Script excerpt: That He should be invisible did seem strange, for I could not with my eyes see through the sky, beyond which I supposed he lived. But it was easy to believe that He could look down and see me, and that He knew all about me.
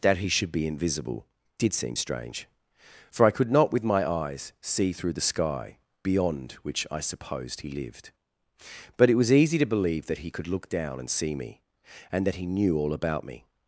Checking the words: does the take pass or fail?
pass